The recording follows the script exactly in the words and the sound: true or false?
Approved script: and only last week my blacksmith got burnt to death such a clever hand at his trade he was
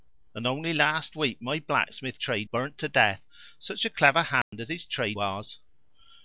false